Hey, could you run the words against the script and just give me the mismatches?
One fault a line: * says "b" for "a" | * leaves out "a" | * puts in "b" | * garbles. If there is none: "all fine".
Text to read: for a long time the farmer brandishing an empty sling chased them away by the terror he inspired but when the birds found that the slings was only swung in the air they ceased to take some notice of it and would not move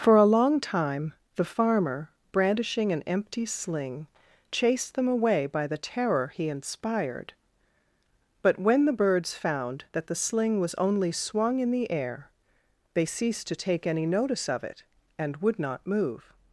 * says "sling" for "slings"
* says "any" for "some"